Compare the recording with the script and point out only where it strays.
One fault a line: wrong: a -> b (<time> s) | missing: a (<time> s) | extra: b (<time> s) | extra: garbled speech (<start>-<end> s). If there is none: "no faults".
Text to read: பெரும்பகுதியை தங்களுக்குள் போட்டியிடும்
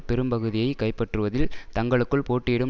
extra: கைப்பற்றுவதில் (0.8 s)